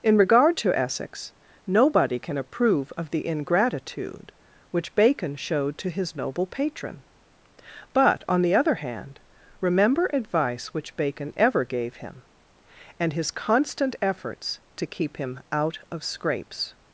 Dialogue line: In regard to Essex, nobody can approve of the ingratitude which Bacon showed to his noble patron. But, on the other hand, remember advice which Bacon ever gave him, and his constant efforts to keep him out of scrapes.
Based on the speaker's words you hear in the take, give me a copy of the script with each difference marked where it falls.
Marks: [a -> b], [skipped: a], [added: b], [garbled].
In regard to Essex, nobody can approve of the ingratitude which Bacon showed to his noble patron. But, on the other hand, remember advice which Bacon ever gave him, and his constant efforts to keep him out of scrapes.